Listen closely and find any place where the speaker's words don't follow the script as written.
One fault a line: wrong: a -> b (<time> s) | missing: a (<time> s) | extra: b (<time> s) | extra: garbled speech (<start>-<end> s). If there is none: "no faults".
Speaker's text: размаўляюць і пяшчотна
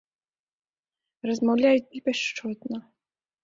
no faults